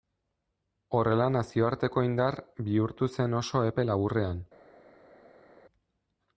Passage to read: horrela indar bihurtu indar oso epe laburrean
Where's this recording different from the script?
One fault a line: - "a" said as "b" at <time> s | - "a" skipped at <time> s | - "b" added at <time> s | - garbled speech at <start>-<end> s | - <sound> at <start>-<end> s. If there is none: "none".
- "nazioarteko" added at 1.4 s
- "indar" said as "zen" at 3.2 s